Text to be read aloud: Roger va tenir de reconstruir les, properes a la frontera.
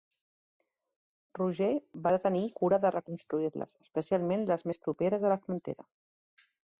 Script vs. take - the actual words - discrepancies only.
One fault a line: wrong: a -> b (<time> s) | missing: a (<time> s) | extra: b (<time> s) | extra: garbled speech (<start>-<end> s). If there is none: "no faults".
extra: cura (2.6 s)
extra: especialment les més (3.9 s)